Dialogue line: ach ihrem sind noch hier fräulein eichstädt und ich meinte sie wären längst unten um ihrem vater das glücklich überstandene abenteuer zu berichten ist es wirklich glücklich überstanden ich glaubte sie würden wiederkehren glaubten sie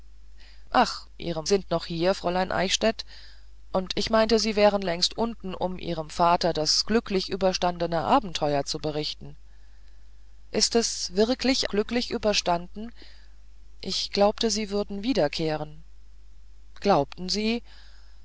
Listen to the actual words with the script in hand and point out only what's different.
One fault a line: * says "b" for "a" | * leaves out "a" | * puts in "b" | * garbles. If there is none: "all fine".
all fine